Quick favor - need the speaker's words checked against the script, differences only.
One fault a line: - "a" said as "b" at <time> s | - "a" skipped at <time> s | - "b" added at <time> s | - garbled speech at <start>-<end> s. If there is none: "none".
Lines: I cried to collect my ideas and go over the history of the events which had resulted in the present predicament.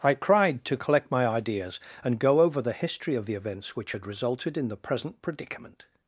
none